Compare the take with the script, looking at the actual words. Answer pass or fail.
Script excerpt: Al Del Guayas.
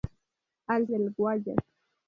pass